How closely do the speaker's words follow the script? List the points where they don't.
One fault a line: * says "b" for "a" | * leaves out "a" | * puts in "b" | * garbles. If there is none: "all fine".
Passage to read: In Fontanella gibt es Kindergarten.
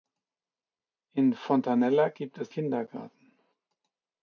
all fine